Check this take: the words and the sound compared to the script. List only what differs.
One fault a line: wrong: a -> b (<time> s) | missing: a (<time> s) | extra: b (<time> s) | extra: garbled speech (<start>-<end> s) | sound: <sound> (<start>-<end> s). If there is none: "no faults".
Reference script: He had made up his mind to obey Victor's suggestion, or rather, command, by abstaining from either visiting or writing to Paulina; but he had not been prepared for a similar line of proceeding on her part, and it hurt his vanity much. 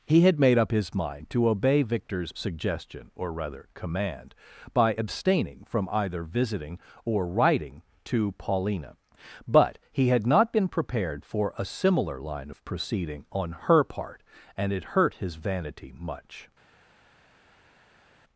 no faults